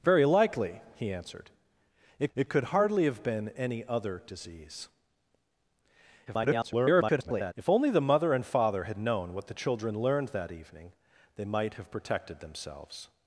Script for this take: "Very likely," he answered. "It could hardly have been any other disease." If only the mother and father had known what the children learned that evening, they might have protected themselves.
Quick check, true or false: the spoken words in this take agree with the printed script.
false